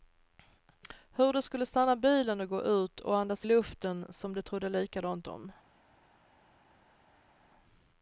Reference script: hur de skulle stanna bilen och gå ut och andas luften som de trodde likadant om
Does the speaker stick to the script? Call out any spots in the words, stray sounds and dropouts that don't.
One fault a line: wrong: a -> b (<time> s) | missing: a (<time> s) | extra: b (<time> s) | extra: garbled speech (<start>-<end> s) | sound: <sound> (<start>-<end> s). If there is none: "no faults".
no faults